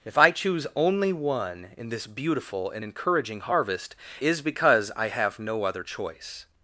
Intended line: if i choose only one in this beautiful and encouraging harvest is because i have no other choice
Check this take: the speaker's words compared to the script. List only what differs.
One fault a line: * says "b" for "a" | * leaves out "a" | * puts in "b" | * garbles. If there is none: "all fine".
all fine